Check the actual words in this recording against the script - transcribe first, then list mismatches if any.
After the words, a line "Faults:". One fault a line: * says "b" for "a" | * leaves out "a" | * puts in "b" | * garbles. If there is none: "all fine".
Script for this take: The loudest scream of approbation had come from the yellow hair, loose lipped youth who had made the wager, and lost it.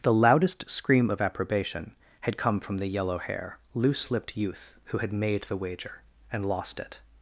The loudest scream of approbation had come from the yellow hair, loose lipped youth who had made the wager, and lost it.
Faults:
all fine